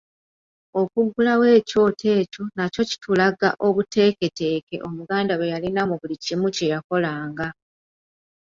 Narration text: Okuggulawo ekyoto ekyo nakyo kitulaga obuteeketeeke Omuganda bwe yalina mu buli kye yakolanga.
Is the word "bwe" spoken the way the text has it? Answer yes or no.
yes